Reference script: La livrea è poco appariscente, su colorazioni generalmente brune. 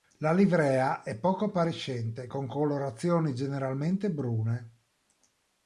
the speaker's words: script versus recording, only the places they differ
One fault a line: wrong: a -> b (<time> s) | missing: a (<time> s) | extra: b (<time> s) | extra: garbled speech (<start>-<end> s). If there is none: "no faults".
wrong: su -> con (2.2 s)